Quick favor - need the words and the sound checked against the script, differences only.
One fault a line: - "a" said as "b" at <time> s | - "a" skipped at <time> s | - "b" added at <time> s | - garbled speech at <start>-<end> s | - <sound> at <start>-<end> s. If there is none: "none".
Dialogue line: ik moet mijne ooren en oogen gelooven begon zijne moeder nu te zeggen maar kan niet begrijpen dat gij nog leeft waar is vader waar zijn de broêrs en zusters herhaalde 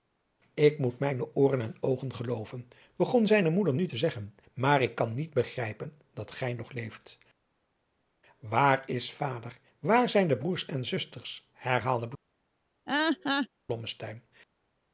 - "ik" added at 4.8 s
- laugh at 12.9-13.5 s